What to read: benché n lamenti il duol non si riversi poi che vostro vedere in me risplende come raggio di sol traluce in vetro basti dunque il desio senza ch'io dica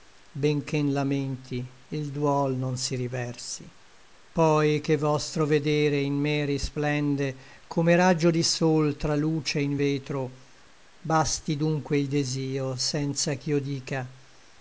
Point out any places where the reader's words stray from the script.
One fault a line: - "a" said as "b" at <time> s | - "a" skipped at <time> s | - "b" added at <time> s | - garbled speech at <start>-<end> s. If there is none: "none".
none